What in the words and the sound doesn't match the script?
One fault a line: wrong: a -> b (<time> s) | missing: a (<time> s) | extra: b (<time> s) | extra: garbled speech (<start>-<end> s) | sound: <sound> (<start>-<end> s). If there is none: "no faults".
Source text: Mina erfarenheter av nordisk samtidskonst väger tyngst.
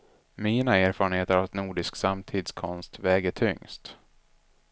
no faults